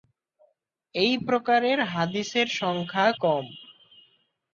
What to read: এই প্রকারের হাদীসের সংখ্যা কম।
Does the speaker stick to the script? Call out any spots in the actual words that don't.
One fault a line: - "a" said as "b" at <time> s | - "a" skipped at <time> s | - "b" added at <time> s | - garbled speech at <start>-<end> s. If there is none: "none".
none